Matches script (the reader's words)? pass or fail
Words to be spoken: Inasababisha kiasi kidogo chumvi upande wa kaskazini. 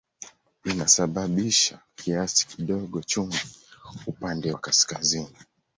pass